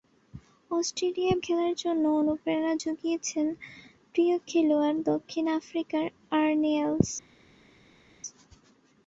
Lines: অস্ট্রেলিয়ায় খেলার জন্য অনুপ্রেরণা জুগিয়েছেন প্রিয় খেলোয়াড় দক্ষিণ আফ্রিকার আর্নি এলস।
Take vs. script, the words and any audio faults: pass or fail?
pass